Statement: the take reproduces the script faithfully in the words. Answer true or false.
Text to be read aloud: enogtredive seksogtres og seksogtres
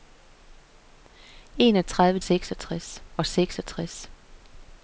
true